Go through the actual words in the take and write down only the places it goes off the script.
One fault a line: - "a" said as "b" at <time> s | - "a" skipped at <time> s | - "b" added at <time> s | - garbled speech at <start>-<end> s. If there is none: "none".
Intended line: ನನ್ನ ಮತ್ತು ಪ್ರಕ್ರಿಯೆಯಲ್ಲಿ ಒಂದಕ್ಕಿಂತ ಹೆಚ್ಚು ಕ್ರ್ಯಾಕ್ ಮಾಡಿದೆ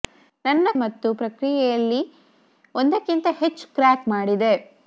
none